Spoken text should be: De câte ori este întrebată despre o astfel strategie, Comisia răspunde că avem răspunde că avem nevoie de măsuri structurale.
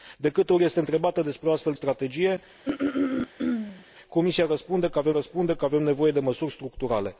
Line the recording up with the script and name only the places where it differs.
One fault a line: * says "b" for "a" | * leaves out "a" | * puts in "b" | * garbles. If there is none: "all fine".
all fine